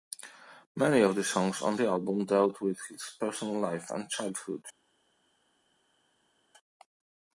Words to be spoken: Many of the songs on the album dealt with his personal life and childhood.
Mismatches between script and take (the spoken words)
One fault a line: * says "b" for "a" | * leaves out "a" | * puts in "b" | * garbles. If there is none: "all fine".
all fine